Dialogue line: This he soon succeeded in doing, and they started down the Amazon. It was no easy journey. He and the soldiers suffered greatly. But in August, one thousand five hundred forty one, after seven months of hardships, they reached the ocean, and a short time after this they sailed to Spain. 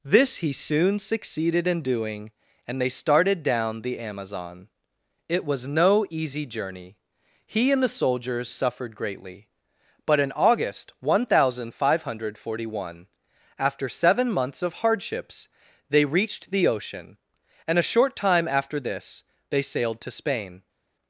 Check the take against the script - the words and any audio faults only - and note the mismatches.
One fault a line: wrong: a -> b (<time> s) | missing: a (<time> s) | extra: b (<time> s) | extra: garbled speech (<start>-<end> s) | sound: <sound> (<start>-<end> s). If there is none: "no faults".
no faults